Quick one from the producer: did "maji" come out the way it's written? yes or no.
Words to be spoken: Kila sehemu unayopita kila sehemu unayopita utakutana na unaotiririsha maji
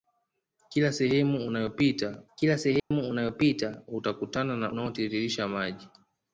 yes